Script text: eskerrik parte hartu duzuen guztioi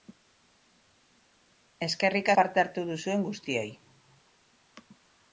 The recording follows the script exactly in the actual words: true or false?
true